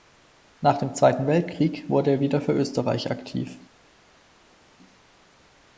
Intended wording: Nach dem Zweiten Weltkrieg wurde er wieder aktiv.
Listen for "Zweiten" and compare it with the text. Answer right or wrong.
right